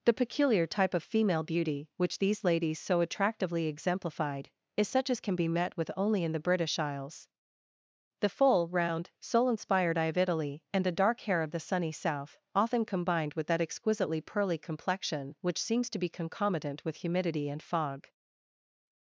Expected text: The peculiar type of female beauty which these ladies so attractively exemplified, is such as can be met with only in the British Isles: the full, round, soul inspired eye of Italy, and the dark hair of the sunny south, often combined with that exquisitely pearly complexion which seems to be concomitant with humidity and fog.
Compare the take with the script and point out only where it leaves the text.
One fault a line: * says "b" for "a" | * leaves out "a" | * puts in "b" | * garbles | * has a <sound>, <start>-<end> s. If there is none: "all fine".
all fine